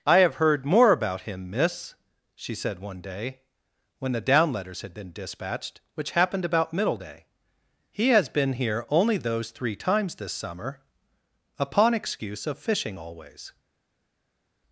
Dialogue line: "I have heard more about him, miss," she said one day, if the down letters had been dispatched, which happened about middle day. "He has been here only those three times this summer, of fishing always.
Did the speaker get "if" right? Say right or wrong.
wrong